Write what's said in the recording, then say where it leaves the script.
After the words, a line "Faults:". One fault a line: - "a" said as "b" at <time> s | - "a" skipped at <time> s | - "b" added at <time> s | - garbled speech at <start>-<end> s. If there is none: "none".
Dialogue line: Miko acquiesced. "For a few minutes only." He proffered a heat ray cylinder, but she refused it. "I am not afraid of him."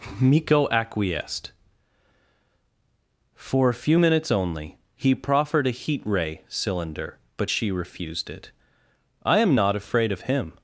Miko acquiesced. "For a few minutes only." He proffered a heat ray cylinder, but she refused it. "I am not afraid of him."
Faults:
none